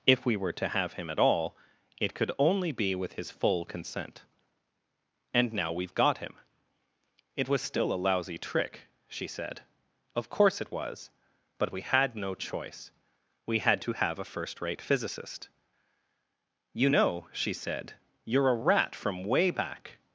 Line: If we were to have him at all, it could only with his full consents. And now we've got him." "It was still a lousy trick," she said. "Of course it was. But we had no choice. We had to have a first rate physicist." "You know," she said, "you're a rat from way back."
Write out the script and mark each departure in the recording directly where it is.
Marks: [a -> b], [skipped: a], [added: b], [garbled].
If we were to have him at all, it could only [added: be] with his full [consents. -> consent] And now we've got him." "It was still a lousy trick," she said. "Of course it was. But we had no choice. We had to have a first rate physicist." "You know," she said, "you're a rat from way back."